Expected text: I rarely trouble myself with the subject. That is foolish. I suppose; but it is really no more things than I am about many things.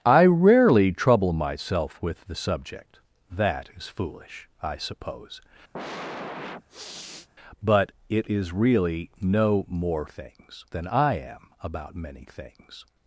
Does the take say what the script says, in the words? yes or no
yes